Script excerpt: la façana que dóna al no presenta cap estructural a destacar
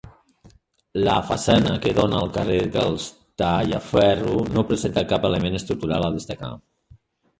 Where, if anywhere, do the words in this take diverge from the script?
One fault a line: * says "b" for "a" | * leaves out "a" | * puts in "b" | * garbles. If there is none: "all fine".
* puts in "carrer dels tallaferro"
* puts in "element"